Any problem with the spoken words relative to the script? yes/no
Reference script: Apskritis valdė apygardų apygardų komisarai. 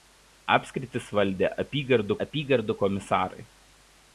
no